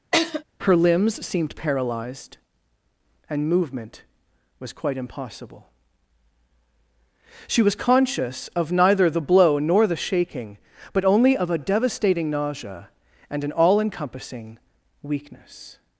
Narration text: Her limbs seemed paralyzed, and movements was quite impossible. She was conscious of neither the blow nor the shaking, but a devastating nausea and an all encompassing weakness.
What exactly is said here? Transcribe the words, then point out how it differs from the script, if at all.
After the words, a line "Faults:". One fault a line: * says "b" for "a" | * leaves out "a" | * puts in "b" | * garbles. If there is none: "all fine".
Her limbs seemed paralyzed, and movement was quite impossible. She was conscious of neither the blow nor the shaking, but only of a devastating nausea and an all encompassing weakness.
Faults:
* says "movement" for "movements"
* puts in "only of"